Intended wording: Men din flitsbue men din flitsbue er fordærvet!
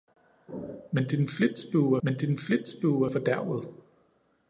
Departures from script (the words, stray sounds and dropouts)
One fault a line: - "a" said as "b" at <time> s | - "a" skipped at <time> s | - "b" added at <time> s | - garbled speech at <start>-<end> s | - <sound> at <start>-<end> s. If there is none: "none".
none